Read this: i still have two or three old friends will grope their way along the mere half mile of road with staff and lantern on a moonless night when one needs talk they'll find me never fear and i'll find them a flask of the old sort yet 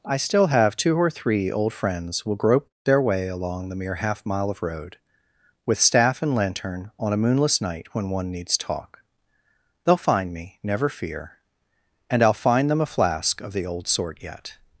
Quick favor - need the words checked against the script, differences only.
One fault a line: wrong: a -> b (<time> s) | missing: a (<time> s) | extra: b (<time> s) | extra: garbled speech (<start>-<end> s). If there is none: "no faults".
no faults